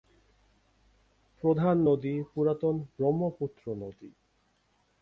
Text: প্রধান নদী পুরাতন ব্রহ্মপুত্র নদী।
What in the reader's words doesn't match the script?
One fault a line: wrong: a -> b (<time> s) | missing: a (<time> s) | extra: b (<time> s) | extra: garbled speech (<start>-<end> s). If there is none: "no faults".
no faults